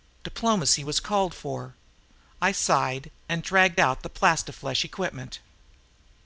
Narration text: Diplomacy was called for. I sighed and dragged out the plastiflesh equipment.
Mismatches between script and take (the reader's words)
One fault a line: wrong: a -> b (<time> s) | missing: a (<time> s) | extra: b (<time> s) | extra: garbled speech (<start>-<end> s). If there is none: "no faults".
no faults